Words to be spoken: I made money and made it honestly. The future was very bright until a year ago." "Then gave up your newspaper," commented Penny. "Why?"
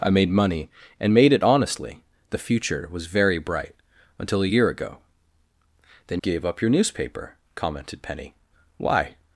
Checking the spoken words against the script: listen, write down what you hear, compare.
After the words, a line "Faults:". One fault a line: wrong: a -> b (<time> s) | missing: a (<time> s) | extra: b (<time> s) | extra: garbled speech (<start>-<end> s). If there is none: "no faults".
I made money and made it honestly. The future was very bright until a year ago." "Then gave up your newspaper," commented Penny. "Why?"
Faults:
no faults